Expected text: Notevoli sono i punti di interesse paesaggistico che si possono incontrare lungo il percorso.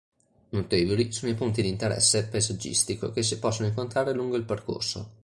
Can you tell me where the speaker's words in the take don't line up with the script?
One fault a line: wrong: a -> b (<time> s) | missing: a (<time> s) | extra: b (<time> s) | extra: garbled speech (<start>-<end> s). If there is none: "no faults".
no faults